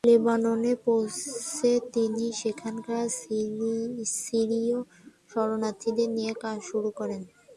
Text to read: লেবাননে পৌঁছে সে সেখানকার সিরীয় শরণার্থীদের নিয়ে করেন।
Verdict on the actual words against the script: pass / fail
fail